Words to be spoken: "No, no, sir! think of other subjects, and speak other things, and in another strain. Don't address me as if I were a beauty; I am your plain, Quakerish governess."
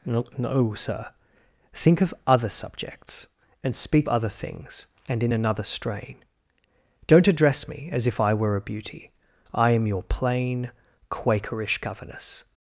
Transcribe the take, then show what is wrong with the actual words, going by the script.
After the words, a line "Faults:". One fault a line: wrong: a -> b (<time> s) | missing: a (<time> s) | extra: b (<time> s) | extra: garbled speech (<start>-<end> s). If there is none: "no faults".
"No, no, sir! think of other subjects, and speak other things, and in another strain. Don't address me as if I were a beauty; I am your plain, Quakerish governess."
Faults:
no faults